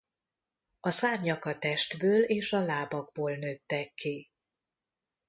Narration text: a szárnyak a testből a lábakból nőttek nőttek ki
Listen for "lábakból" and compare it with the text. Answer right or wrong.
right